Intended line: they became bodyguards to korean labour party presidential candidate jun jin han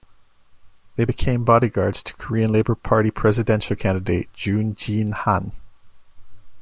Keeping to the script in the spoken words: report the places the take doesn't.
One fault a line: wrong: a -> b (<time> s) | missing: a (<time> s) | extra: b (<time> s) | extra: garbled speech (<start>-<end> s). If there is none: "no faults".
no faults